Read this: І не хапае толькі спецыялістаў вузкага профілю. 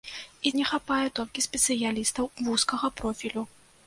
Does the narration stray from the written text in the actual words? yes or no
no